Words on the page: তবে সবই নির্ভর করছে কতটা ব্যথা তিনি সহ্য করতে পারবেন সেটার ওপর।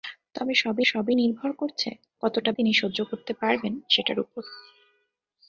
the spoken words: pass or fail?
fail